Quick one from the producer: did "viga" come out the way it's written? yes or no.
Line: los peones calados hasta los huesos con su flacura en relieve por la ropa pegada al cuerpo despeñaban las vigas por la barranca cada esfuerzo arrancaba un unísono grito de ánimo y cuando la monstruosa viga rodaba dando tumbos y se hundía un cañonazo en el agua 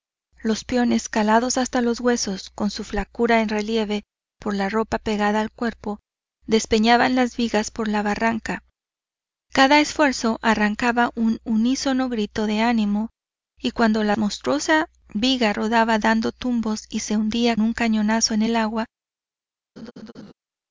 yes